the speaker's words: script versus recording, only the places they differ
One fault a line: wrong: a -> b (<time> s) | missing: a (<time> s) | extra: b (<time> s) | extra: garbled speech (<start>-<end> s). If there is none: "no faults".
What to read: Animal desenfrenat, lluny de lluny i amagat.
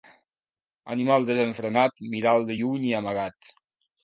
wrong: lluny -> mira'l (2.1 s)